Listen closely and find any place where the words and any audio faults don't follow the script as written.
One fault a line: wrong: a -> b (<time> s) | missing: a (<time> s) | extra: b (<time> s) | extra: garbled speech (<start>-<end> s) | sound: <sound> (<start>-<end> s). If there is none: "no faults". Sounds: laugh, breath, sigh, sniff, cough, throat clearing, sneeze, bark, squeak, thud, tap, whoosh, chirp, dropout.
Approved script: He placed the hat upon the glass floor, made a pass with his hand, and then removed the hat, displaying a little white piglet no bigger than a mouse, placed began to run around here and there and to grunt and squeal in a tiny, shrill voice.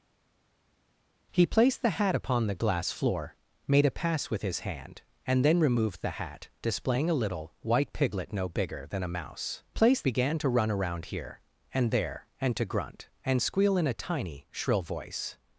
no faults